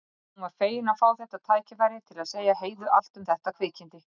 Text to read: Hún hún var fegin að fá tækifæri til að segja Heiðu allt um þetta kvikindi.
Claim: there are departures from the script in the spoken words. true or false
true